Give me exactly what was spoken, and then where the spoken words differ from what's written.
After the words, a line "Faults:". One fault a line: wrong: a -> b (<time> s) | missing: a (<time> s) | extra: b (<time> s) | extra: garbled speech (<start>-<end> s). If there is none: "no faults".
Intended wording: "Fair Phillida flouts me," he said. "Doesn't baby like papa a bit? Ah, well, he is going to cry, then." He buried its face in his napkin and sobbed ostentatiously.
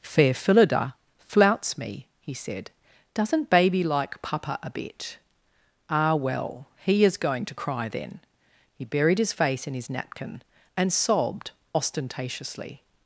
"Fair Phillida flouts me," he said. "Doesn't baby like papa a bit? Ah, well, he is going to cry, then." He buried his face in his napkin and sobbed ostentatiously.
Faults:
wrong: its -> his (9.2 s)